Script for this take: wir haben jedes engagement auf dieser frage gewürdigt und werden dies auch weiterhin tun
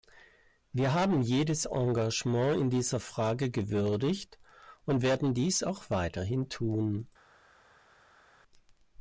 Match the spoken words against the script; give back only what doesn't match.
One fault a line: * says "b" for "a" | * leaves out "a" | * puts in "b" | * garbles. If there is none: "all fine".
* says "in" for "auf"